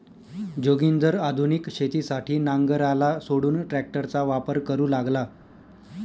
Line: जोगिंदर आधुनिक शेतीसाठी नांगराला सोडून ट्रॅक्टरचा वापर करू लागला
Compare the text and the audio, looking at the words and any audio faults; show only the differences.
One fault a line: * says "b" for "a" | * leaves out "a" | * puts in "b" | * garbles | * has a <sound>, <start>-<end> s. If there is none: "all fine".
all fine